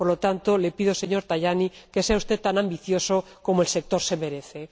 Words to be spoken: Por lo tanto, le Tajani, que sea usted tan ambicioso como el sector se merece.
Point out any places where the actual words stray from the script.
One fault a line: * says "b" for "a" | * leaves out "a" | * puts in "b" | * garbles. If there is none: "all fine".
* puts in "pido señor"